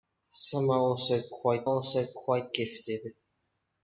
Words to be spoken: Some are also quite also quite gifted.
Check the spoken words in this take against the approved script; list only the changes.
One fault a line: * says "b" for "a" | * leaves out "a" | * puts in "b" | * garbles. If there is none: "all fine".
all fine